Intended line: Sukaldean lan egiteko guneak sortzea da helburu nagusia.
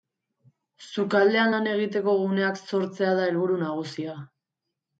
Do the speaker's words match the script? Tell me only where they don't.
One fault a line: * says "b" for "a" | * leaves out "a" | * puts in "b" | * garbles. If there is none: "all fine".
all fine